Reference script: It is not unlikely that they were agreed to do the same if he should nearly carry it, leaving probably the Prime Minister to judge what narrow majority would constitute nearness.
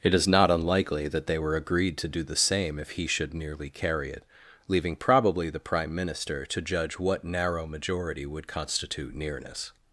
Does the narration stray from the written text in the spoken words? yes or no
no